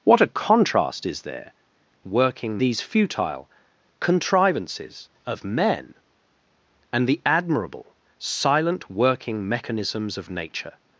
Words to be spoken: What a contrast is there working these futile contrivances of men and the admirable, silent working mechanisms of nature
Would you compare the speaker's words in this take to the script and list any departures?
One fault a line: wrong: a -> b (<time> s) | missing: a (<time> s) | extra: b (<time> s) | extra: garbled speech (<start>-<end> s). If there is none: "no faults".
no faults